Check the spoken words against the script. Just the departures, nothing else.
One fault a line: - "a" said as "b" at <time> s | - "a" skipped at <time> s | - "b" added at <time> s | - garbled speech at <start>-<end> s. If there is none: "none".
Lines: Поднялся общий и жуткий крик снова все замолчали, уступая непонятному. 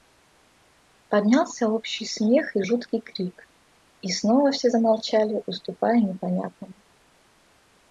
- "смех" added at 2.0 s
- "и" added at 4.0 s